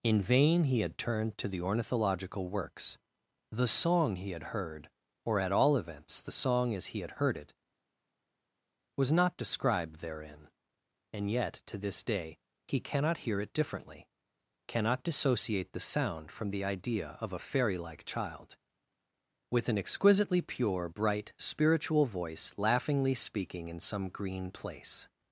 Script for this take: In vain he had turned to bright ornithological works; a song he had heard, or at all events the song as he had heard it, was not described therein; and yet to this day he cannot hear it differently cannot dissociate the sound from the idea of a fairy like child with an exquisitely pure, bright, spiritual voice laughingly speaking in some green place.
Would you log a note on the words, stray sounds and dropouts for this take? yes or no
yes